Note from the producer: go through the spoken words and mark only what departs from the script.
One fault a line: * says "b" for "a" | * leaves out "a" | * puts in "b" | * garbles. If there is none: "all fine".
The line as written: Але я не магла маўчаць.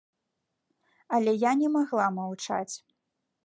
all fine